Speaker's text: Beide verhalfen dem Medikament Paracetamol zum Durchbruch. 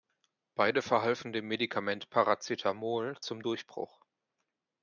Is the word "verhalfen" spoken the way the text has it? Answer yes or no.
yes